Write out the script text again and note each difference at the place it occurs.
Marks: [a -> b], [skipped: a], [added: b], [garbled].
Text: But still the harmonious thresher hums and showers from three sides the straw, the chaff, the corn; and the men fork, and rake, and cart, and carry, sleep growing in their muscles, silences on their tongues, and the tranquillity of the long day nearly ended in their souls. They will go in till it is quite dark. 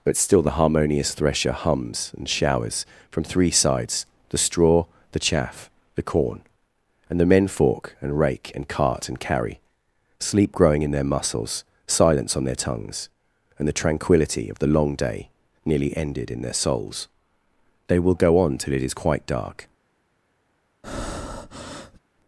But still the harmonious thresher hums and showers from three sides the straw, the chaff, the corn; and the men fork, and rake, and cart, and carry, sleep growing in their muscles, [silences -> silence] on their tongues, and the tranquillity of the long day nearly ended in their souls. They will go [in -> on] till it is quite dark.